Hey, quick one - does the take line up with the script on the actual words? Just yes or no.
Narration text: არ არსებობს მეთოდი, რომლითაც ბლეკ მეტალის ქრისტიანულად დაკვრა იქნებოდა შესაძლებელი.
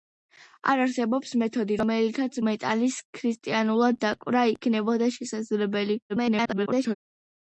no